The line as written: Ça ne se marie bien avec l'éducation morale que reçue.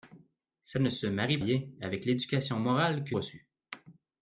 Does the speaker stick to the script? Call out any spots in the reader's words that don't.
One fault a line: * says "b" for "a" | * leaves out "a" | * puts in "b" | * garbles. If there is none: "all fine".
all fine